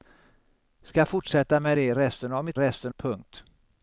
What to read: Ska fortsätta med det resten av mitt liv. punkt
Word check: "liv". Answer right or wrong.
wrong